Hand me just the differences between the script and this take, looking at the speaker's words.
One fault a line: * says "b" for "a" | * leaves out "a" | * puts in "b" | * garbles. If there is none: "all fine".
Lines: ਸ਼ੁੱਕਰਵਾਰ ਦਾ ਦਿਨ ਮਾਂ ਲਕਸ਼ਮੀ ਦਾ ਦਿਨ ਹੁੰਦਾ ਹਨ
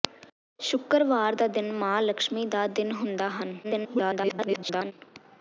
* garbles